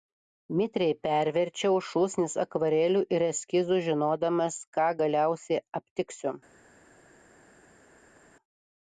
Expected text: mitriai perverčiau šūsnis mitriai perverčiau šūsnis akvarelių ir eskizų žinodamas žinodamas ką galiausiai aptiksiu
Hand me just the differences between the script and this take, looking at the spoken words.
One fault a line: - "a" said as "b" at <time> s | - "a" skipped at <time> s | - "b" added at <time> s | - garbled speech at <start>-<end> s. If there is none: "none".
- "mitriai perverčiau šūsnis" skipped at 2.4 s
- "žinodamas" skipped at 4.6 s